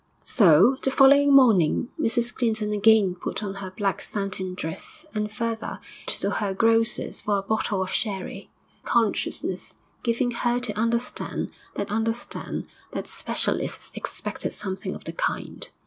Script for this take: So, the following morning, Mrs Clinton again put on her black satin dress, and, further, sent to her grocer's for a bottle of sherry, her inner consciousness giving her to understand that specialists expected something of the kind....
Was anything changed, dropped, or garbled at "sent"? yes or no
yes